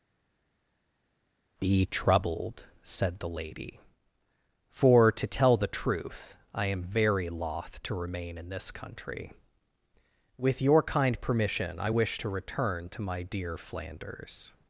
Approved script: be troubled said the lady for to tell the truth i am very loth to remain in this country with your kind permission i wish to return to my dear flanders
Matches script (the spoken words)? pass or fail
pass